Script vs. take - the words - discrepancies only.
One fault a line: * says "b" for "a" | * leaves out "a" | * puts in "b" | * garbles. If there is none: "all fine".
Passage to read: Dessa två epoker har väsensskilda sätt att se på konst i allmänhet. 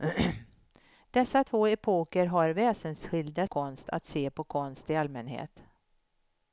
* says "konst" for "sätt"